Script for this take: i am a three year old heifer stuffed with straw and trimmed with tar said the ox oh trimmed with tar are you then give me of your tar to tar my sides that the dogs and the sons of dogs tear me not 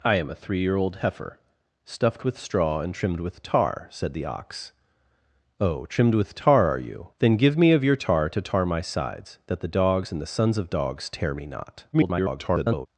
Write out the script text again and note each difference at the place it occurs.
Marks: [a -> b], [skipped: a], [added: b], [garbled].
i am a three year old heifer stuffed with straw and trimmed with tar said the ox oh trimmed with tar are you then give me of your tar to tar my sides that the dogs and the sons of dogs tear me not [garbled]